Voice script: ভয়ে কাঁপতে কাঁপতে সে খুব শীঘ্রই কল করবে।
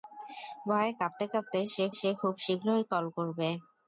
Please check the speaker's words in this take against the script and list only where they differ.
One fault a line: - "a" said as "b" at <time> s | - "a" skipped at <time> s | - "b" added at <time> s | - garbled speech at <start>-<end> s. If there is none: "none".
- "সে" added at 2.0 s